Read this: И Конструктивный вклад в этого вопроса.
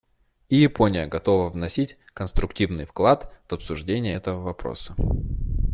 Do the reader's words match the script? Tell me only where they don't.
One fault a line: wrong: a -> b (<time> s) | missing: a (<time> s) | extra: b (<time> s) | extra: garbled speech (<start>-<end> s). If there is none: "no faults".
extra: Япония готова вносить (0.6 s)
extra: обсуждение (3.5 s)